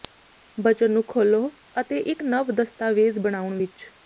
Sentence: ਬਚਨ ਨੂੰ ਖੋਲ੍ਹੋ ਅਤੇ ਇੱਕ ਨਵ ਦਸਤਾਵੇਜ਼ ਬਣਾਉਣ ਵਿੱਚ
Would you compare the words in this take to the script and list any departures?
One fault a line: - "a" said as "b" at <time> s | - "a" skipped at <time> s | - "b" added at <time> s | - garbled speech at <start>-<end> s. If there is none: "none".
none